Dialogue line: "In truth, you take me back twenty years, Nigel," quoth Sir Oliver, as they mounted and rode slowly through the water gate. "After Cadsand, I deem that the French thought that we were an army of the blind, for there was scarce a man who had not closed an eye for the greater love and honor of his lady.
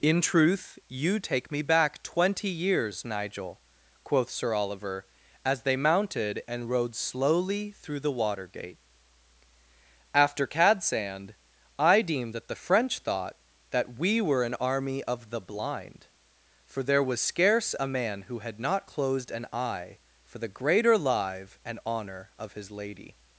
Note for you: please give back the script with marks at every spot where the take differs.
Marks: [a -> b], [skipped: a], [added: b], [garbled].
"In truth, you take me back twenty years, Nigel," quoth Sir Oliver, as they mounted and rode slowly through the water gate. "After Cadsand, I deem that the French thought that we were an army of the blind, for there was scarce a man who had not closed an eye for the greater [love -> live] and honor of his lady.